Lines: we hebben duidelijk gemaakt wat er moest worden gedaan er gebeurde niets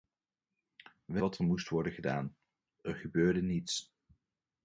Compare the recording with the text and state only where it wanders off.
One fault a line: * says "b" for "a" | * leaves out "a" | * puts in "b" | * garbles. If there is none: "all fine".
* leaves out "hebben duidelijk gemaakt"